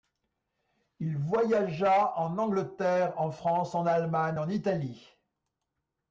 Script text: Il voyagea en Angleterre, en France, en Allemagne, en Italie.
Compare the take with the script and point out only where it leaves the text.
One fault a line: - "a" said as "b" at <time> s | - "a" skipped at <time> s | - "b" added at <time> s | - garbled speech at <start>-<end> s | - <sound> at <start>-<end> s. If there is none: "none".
none